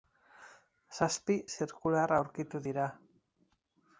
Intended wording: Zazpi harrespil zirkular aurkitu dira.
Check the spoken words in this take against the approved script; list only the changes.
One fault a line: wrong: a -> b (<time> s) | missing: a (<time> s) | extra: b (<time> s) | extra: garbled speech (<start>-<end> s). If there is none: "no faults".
missing: harrespil (1.4 s)